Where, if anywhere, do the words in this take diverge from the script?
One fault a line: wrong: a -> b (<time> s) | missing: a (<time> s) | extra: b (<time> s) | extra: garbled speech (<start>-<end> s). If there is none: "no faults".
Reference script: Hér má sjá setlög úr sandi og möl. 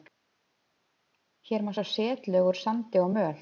no faults